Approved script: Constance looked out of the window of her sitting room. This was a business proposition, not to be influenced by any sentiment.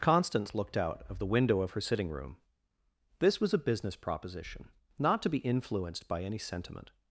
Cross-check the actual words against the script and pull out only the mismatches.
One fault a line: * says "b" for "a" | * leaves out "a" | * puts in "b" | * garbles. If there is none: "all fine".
all fine